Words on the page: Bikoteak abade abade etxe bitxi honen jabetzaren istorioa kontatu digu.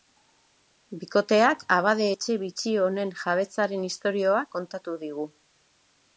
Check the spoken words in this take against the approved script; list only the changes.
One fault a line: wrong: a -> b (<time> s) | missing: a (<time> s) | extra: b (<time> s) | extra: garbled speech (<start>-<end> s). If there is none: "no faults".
missing: abade (2.1 s)